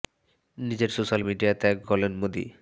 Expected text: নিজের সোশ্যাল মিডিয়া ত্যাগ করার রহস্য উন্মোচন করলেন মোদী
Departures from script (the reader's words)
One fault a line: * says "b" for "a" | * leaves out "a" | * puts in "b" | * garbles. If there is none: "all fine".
* leaves out "করার রহস্য উন্মোচন"